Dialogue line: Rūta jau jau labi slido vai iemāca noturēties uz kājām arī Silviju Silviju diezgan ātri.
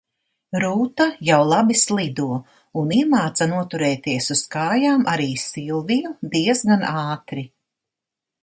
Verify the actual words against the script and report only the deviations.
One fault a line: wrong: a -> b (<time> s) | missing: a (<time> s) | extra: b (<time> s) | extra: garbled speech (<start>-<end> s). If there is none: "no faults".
missing: jau (1.4 s)
wrong: vai -> un (2.8 s)
missing: Silviju (6.1 s)